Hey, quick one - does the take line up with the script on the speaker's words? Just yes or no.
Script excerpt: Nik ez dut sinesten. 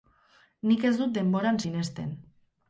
no